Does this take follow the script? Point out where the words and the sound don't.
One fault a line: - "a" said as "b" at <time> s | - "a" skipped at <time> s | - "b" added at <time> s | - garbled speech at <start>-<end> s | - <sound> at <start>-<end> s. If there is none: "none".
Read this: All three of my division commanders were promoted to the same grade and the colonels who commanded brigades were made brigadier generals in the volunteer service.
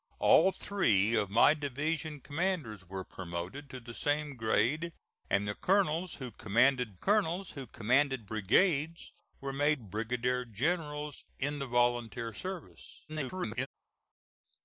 - "colonels who commanded" added at 6.9 s
- garbled speech at 13.1-13.7 s